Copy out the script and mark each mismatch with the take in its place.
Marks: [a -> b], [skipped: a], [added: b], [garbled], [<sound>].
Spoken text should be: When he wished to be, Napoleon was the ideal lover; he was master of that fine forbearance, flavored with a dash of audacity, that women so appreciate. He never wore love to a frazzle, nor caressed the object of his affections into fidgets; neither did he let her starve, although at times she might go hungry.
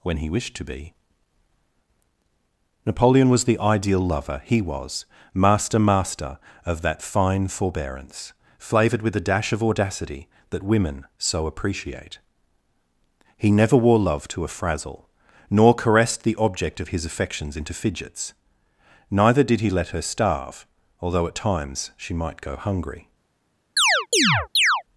When he wished to be, Napoleon was the ideal lover; he was master [added: master] of that fine forbearance, flavored with a dash of audacity, that women so appreciate. He never wore love to a frazzle, nor caressed the object of his affections into fidgets; neither did he let her starve, although at times she might go hungry. [chirp]